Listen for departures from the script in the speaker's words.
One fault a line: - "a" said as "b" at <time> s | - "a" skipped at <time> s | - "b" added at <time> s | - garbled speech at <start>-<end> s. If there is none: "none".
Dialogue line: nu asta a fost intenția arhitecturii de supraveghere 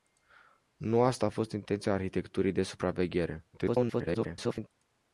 - garbled speech at 3.5-4.7 s